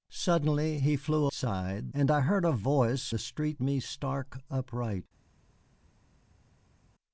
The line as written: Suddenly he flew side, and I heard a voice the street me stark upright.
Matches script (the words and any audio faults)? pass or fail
pass